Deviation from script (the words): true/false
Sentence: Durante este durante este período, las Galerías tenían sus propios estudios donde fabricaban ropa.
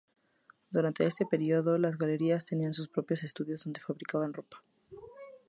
true